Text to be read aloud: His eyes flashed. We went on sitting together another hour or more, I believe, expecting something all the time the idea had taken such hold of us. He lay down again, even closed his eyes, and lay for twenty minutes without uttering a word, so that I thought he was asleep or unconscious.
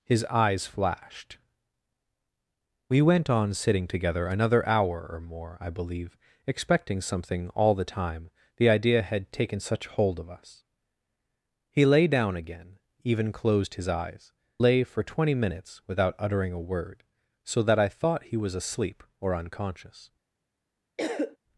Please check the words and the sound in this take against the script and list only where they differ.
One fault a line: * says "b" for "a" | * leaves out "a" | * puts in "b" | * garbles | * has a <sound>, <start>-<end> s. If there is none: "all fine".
* leaves out "and"
* has a cough, 21.0-21.4 s